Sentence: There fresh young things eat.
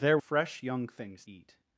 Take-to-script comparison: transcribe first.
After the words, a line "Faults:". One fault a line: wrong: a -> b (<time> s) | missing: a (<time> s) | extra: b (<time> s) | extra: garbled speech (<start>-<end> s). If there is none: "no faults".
There fresh young things eat.
Faults:
no faults